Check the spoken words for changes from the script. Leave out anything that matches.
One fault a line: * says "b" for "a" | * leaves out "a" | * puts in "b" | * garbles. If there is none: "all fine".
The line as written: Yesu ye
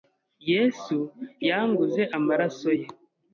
* puts in "yanguze amaraso"